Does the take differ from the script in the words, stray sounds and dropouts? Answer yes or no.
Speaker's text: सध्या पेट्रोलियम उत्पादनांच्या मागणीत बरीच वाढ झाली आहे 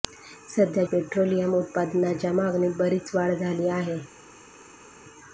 no